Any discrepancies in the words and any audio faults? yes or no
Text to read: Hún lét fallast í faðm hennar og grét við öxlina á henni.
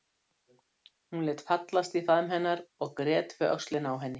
no